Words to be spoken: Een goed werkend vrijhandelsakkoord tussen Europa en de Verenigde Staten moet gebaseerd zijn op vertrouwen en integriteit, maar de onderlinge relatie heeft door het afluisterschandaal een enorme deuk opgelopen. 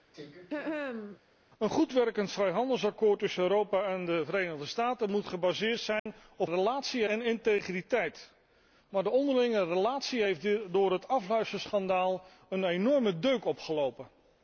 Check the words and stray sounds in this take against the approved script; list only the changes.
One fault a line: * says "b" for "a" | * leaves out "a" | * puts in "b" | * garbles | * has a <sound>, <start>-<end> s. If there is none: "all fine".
* has a throat clearing, 0.1-1.2 s
* has a dropout, 6.0-6.1 s
* says "relatie" for "vertrouwen"